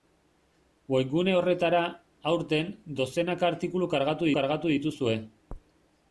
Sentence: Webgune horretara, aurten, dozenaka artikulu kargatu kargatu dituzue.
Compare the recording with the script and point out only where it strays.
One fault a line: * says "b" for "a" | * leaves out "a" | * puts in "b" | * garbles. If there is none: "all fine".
all fine